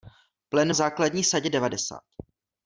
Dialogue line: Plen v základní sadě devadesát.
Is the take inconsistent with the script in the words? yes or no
no